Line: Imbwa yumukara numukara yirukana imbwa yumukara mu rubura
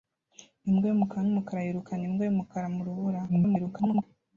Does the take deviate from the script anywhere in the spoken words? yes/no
yes